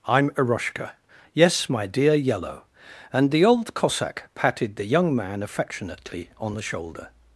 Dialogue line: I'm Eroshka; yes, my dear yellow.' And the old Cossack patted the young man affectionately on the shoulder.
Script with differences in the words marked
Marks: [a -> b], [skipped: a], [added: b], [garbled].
I'm Eroshka; yes, my dear yellow.' And the old Cossack patted the young man affectionately on the shoulder.